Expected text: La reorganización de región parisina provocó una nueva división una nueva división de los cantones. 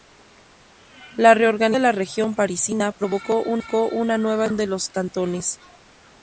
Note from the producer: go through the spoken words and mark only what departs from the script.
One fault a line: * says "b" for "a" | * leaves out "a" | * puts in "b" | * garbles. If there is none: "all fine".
* puts in "la"
* leaves out "una nueva división"